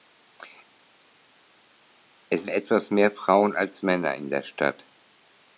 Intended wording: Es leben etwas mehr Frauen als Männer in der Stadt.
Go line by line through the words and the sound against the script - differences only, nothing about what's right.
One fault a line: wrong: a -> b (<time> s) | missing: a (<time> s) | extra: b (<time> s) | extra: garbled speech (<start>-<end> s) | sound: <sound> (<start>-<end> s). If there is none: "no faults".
missing: leben (2.5 s)